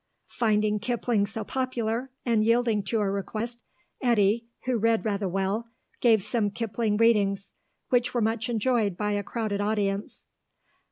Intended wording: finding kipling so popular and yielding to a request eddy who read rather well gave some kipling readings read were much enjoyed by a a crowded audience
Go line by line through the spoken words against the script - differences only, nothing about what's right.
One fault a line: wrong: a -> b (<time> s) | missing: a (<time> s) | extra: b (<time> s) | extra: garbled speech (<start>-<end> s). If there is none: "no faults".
wrong: read -> which (7.9 s)
missing: a (9.2 s)